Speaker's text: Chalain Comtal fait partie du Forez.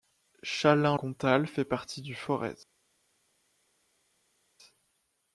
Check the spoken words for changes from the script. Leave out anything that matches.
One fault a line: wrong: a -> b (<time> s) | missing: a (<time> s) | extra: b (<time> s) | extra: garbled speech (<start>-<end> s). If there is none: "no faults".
no faults